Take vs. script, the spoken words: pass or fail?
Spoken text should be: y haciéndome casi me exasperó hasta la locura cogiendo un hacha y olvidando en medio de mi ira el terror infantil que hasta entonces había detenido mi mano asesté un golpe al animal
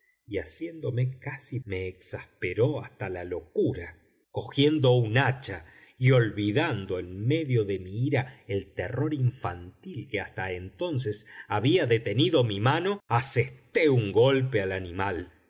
pass